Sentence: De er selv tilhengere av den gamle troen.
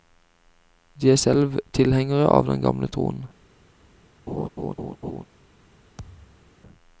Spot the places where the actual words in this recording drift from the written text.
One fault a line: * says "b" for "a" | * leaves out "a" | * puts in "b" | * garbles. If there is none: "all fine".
all fine